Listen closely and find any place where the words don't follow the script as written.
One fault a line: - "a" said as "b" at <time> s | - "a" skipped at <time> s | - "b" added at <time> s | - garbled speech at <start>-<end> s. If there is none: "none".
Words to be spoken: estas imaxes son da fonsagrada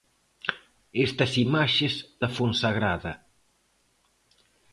- "son" skipped at 1.9 s